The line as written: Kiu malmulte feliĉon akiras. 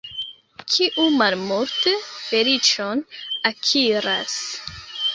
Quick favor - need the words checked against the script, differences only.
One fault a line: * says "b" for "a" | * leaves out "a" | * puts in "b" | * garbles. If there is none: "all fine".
all fine